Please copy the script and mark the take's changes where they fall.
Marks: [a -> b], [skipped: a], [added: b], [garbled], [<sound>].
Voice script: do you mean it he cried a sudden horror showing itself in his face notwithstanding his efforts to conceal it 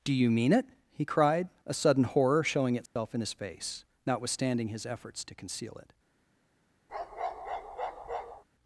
do you mean it he cried a sudden horror showing itself [dropout] in his face notwithstanding his efforts to conceal it [bark]